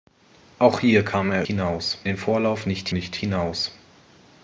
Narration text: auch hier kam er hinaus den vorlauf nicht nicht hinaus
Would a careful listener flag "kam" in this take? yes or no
no